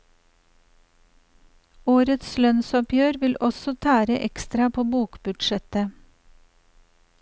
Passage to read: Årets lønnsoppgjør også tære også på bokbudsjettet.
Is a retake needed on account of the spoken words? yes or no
yes